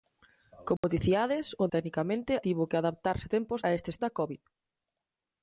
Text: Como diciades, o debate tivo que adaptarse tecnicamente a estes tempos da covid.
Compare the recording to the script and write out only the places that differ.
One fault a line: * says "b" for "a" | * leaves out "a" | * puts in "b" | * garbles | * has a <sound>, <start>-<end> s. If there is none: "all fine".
* has a dropout, 0.8-0.8 s
* says "tecnicamente" for "debate"
* says "tempos" for "tecnicamente"
* leaves out "tempos"